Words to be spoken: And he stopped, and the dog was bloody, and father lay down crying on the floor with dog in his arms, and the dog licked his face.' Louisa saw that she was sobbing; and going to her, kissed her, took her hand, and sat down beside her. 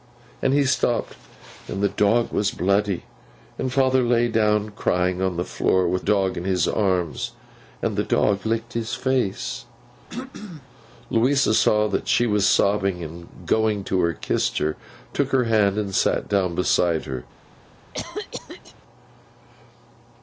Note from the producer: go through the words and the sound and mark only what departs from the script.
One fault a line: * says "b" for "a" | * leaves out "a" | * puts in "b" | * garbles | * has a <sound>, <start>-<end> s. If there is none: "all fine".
* has a throat clearing, 10.1-10.7 s
* has a cough, 17.9-18.8 s